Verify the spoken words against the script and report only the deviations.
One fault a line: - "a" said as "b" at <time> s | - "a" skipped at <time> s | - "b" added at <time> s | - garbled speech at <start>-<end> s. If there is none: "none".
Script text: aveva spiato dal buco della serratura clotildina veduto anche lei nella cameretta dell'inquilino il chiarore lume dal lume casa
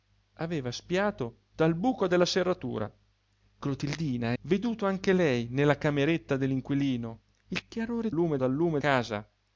none